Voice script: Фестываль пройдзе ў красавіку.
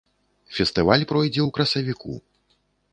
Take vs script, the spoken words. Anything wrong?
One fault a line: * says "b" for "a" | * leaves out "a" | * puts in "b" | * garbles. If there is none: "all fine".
all fine